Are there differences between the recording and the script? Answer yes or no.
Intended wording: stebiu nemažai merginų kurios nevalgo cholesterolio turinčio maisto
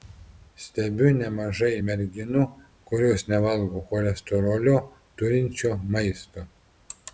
no